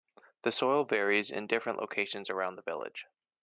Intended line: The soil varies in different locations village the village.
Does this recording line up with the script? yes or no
no